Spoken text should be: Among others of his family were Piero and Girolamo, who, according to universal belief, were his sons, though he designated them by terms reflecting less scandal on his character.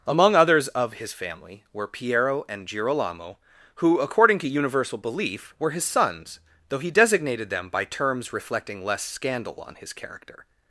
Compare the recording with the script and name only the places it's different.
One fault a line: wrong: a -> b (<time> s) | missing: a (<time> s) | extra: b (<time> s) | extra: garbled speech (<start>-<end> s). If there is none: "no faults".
no faults